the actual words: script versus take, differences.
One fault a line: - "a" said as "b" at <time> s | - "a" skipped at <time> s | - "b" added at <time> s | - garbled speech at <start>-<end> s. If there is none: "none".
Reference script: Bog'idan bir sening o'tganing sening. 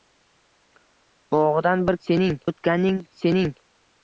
none